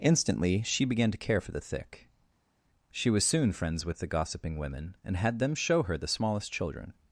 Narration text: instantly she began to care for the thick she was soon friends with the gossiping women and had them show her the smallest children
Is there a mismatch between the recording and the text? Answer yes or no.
no